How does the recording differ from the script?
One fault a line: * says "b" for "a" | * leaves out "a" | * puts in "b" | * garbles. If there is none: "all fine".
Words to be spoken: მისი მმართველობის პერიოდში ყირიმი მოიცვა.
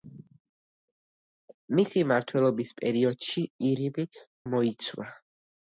all fine